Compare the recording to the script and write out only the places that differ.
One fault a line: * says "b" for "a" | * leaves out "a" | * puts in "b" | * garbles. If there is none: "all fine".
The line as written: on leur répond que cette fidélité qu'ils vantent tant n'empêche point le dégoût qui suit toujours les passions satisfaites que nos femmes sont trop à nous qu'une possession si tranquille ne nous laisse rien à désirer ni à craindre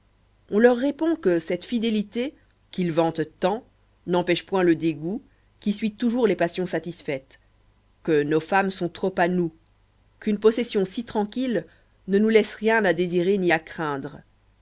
all fine